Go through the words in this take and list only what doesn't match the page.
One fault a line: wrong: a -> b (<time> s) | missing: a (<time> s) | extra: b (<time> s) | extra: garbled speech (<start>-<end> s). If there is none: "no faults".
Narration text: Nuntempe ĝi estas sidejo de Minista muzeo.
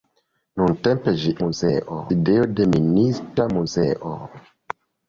wrong: estas -> muzeo (1.4 s)